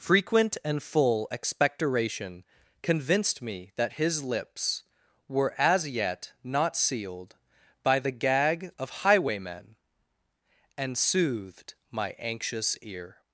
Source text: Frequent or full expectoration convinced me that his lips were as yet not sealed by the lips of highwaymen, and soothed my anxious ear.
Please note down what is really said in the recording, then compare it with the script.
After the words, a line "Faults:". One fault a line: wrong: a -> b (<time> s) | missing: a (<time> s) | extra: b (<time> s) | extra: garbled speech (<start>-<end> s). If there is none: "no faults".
Frequent and full expectoration convinced me that his lips were as yet not sealed by the gag of highwaymen, and soothed my anxious ear.
Faults:
wrong: or -> and (0.7 s)
wrong: lips -> gag (8.1 s)